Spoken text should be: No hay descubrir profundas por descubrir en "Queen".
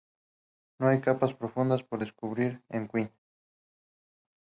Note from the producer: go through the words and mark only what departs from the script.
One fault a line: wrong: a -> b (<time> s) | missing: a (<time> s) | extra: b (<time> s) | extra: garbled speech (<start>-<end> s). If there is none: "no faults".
wrong: descubrir -> capas (1.0 s)